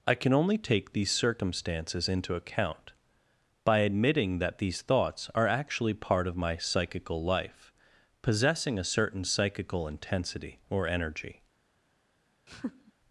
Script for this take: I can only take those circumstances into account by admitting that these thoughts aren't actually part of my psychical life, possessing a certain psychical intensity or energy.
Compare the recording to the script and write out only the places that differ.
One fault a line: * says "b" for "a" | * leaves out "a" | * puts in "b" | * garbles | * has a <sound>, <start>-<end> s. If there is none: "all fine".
* says "these" for "those"
* says "are" for "aren't"
* has a laugh, 12.5-12.9 s